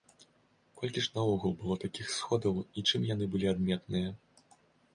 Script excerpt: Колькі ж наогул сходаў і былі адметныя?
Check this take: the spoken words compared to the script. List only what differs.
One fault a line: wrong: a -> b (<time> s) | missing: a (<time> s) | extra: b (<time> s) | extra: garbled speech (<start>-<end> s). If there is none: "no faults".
extra: было такіх (1.6 s)
extra: чым яны (2.9 s)